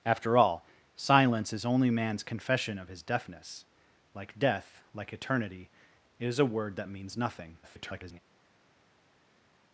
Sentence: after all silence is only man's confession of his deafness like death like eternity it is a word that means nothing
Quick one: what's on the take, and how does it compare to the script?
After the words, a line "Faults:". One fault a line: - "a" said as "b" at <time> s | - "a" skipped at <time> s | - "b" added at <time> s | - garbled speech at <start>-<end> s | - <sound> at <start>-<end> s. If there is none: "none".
after all silence is only man's confession of his deafness like death like eternity it is a word that means nothing [garbled]
Faults:
- garbled speech at 7.6-8.2 s